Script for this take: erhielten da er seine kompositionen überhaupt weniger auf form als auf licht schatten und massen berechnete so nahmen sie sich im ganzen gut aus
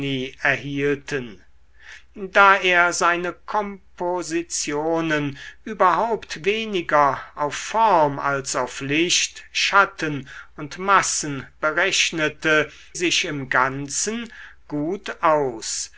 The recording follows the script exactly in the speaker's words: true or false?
false